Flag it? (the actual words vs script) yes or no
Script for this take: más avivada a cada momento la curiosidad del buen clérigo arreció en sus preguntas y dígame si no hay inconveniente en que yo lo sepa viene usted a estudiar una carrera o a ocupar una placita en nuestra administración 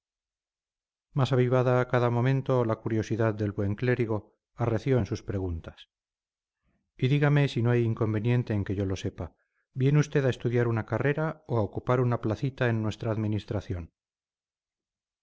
no